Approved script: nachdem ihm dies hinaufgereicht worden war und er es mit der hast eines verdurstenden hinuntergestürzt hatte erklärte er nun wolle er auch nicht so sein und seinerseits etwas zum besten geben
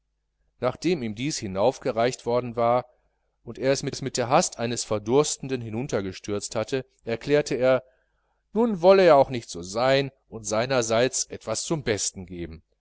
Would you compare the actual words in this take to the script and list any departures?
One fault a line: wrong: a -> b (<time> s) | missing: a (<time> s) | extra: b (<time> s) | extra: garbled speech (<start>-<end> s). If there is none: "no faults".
extra: es mit (3.9 s)